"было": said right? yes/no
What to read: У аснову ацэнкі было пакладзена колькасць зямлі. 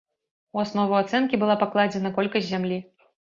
no